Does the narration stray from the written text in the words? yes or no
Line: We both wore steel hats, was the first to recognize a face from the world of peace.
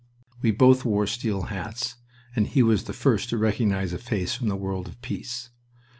yes